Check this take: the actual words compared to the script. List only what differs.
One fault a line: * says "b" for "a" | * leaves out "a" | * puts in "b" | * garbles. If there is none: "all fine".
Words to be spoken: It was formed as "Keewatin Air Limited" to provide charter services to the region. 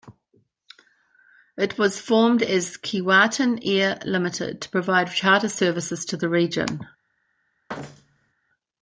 all fine